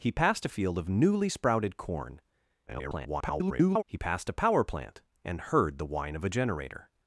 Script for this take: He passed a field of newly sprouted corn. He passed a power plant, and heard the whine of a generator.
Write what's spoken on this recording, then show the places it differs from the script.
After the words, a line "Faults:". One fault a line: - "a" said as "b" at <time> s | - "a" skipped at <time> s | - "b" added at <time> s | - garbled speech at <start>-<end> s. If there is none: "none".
He passed a field of newly sprouted corn. [garbled] He passed a power plant, and heard the whine of a generator.
Faults:
- garbled speech at 2.7-3.8 s